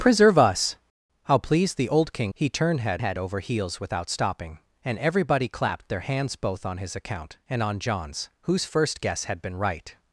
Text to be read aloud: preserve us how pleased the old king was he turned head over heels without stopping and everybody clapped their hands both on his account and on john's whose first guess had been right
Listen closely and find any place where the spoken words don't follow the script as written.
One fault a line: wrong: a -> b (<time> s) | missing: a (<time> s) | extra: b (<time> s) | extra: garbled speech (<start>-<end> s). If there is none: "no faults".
missing: was (2.3 s)
extra: head (3.0 s)